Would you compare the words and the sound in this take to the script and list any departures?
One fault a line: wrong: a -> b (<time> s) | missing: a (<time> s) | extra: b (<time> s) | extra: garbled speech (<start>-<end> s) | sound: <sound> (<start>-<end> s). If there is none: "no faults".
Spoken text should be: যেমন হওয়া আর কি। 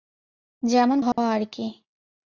sound: dropout (1.1-1.2 s)